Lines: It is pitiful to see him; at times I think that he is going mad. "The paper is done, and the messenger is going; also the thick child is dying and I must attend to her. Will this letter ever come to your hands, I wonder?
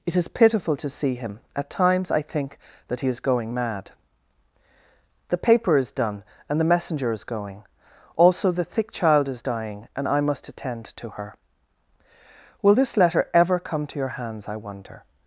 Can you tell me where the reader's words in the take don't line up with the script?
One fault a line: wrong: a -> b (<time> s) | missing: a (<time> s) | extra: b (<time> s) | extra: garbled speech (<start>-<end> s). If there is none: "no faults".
no faults